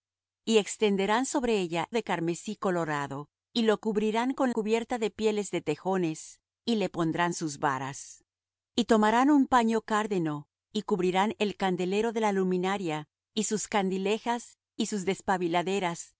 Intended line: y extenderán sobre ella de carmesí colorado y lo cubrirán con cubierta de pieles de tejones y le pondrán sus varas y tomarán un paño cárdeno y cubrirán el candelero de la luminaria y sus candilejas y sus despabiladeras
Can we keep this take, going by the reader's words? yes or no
yes